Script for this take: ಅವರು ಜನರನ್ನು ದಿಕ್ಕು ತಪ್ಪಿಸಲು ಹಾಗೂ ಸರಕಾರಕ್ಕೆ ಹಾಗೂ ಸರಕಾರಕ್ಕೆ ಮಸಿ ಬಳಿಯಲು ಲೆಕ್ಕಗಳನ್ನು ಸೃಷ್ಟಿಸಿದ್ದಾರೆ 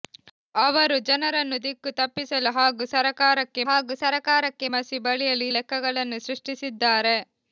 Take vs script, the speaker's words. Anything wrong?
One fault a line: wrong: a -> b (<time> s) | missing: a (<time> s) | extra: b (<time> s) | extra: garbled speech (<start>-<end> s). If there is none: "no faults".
no faults